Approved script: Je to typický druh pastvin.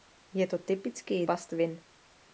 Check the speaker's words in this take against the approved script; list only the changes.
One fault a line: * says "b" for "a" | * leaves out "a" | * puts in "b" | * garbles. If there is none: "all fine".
* leaves out "druh"